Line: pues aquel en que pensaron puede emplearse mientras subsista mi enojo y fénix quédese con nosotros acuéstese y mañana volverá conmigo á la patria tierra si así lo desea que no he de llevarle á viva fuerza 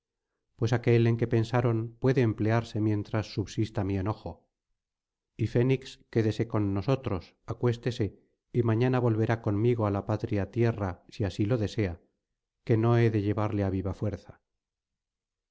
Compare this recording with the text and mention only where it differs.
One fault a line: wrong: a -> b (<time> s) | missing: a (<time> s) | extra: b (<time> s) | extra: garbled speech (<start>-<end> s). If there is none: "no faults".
no faults